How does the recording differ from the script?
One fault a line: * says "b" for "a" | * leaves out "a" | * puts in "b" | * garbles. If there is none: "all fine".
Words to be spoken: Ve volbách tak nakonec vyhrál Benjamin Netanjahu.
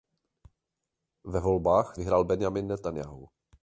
* leaves out "tak nakonec"